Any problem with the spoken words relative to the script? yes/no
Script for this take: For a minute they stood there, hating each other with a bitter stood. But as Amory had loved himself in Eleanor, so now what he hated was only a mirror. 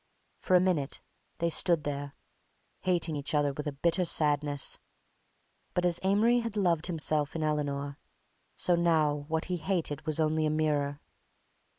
yes